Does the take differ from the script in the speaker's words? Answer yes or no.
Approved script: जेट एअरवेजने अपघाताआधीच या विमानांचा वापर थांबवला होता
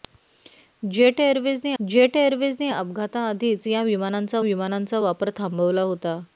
yes